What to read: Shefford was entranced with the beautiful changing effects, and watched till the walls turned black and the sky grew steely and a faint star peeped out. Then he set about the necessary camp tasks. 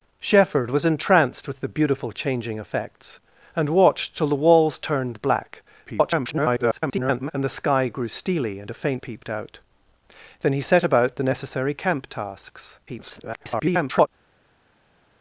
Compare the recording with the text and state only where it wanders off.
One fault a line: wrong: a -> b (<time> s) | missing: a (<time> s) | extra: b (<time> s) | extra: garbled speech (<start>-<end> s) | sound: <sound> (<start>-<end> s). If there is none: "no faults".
extra: garbled speech (5.9-7.3 s)
missing: star (9.0 s)
extra: garbled speech (12.9-14.1 s)